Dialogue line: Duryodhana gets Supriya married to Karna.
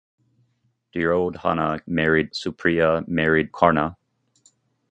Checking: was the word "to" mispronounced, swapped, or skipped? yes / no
yes